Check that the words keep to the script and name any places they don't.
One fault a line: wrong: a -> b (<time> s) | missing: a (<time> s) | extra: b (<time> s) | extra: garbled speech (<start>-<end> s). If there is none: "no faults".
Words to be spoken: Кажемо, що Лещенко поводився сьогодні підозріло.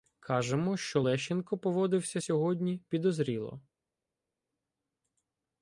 no faults